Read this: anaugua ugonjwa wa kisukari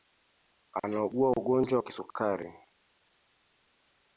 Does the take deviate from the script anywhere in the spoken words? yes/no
yes